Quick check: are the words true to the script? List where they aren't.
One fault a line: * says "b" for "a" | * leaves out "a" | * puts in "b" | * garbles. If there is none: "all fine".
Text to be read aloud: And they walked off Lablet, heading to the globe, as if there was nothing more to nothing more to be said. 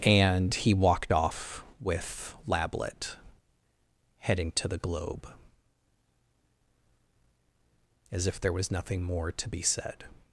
* says "he" for "they"
* puts in "with"
* leaves out "nothing more to"